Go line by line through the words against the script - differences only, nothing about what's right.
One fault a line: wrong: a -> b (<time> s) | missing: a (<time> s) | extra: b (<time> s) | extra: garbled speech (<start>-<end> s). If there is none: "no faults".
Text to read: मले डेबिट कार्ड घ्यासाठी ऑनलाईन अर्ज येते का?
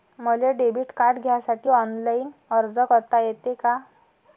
extra: करता (2.9 s)